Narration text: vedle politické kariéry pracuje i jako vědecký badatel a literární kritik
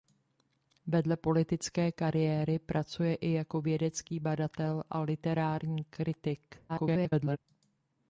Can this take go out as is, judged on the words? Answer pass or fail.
fail